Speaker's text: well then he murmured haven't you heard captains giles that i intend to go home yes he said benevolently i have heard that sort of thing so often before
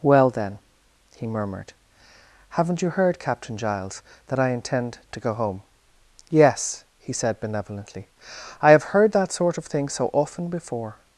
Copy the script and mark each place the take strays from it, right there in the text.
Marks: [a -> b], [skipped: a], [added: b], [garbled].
well then he murmured haven't you heard [captains -> captain] giles that i intend to go home yes he said benevolently i have heard that sort of thing so often before